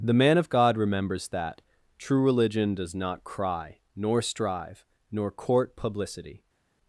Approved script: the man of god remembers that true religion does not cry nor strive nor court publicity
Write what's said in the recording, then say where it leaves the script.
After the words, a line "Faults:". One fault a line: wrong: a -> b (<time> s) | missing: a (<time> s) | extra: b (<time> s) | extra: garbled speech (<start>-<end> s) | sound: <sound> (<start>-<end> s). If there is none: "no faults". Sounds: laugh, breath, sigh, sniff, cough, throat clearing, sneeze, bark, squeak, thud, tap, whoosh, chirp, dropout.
the man of god remembers that true religion does not cry nor strive nor court publicity
Faults:
no faults